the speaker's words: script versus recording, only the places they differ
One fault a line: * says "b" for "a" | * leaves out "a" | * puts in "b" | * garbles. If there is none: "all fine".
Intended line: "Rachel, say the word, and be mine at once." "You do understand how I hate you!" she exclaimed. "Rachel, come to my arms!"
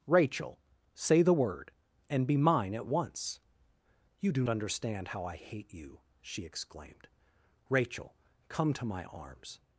all fine